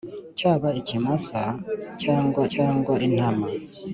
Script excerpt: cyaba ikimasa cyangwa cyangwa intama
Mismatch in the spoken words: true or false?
false